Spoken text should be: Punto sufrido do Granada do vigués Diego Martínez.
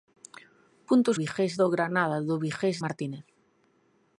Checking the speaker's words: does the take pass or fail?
fail